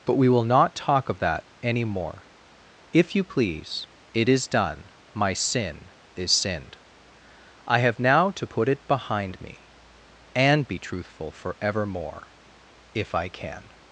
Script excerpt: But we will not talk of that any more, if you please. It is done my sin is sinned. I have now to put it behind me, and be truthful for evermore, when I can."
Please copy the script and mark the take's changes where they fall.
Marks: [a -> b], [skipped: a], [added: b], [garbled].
But we will not talk of that any more, if you please. It is done my sin is sinned. I have now to put it behind me, and be truthful for evermore, [when -> if] I can."